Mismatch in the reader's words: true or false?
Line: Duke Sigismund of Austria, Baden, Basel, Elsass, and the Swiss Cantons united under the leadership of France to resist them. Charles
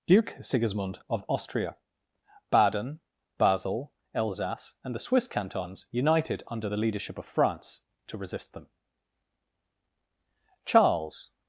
false